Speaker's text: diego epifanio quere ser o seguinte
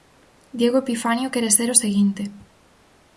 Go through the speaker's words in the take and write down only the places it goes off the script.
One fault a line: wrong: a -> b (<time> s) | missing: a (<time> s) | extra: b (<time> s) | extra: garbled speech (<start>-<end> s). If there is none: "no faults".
no faults